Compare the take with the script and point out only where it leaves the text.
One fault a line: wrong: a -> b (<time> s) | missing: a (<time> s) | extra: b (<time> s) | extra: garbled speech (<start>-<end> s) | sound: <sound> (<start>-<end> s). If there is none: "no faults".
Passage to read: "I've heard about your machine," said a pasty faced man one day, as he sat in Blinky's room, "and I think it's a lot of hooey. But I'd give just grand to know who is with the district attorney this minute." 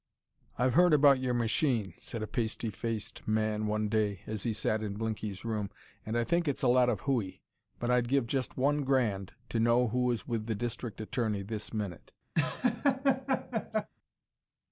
extra: one (8.6 s)
sound: laugh (12.3-13.9 s)